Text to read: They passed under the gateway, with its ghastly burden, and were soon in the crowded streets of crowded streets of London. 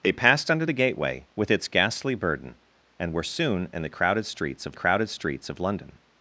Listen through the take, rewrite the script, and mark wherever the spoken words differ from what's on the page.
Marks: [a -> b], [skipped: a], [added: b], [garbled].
They passed under the gateway, with its ghastly burden, and were soon in the crowded streets of crowded streets of London.